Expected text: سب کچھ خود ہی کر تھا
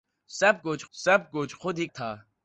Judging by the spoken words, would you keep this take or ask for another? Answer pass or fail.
fail